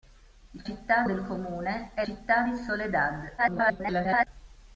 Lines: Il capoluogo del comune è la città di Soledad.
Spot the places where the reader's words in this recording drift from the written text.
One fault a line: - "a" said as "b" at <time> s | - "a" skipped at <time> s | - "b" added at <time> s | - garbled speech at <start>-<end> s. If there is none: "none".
- "capoluogo" said as "città" at 0.6 s
- "la" skipped at 2.0 s
- garbled speech at 3.4-4.3 s